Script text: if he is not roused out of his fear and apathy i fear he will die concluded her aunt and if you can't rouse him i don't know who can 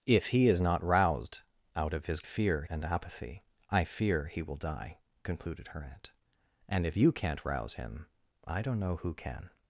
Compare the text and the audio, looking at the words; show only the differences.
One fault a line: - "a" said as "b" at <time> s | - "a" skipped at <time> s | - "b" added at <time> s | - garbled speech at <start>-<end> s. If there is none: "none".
none